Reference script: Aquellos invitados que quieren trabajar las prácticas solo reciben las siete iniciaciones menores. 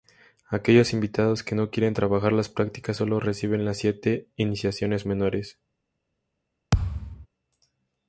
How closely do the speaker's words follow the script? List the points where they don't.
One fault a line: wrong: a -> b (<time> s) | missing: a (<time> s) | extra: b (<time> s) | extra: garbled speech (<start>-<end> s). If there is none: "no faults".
extra: no (1.5 s)